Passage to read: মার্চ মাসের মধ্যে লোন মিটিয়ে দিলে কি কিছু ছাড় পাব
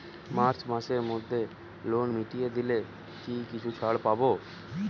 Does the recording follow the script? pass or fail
pass